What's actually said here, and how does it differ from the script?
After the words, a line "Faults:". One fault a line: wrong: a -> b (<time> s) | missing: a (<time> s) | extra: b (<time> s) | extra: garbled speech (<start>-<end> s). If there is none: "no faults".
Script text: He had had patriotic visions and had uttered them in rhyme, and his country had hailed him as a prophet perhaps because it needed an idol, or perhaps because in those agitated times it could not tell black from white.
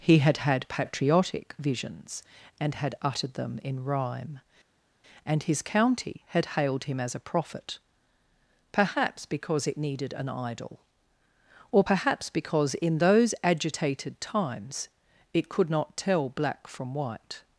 He had had patriotic visions and had uttered them in rhyme, and his county had hailed him as a prophet perhaps because it needed an idol, or perhaps because in those agitated times it could not tell black from white.
Faults:
wrong: country -> county (5.6 s)